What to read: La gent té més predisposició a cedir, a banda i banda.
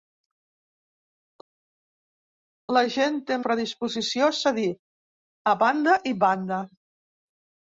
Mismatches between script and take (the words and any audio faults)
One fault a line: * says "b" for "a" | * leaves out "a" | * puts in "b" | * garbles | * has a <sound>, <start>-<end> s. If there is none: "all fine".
* leaves out "més"